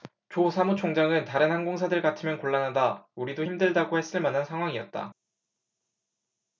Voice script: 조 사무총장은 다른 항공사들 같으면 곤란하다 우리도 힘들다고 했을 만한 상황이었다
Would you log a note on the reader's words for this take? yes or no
no